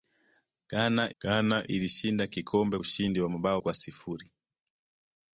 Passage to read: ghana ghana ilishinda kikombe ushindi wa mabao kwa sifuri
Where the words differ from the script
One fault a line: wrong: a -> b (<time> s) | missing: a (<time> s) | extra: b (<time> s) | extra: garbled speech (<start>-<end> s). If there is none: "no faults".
no faults